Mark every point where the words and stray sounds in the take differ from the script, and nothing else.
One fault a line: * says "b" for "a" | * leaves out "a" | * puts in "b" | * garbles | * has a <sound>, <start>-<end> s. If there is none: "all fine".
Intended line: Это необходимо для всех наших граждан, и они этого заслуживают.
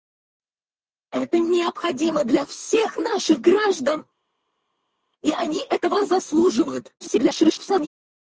* garbles